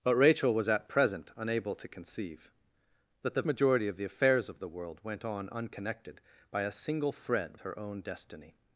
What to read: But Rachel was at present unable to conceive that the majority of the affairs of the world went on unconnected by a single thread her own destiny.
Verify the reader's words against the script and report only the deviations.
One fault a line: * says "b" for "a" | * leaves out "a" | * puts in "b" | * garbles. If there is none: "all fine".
all fine